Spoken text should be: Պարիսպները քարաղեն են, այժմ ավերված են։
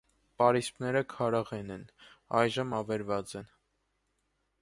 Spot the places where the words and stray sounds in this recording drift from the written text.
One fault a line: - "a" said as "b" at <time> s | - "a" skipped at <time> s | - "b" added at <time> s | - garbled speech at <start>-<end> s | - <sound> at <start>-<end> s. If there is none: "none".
none